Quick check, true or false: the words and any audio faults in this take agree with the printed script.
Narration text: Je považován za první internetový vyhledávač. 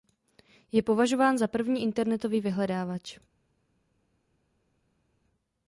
true